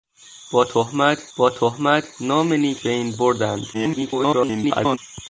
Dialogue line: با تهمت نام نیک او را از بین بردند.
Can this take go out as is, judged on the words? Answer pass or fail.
fail